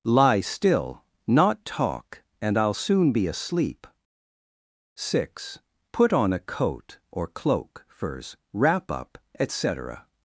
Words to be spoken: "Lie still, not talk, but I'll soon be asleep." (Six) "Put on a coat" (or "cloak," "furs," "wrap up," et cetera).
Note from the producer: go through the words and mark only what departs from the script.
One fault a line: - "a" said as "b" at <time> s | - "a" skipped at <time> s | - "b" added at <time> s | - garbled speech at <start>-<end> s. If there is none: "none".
- "but" said as "and" at 2.4 s